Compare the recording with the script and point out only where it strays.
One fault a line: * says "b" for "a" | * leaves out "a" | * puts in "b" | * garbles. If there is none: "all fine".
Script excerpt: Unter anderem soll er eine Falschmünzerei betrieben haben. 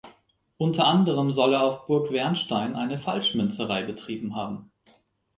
* puts in "auf Burg Wernstein"